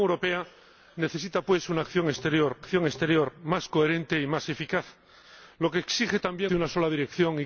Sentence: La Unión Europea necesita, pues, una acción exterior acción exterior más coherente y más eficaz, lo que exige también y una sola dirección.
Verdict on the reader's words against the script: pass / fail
pass